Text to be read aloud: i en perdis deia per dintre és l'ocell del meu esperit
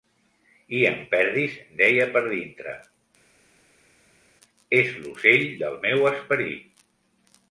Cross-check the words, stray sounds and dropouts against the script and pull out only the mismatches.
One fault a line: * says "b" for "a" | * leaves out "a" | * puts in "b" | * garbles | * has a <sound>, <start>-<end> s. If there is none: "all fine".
all fine